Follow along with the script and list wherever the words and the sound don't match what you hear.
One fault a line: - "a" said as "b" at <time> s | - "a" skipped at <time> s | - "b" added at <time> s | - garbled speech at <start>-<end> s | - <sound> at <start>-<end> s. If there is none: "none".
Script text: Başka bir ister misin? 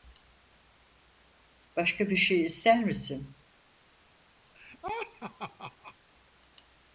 - "şey" added at 2.2 s
- laugh at 4.5-5.9 s